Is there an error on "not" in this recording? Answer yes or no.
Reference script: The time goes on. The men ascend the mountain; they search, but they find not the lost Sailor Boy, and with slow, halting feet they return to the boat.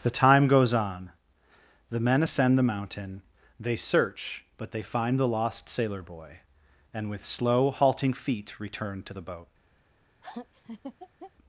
yes